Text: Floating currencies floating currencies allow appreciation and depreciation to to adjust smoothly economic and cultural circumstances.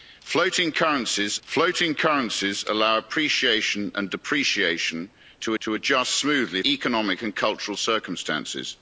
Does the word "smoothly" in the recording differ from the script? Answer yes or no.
no